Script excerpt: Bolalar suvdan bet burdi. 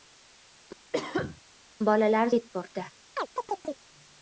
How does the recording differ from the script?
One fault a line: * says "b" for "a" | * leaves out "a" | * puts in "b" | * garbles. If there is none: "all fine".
* leaves out "suvdan"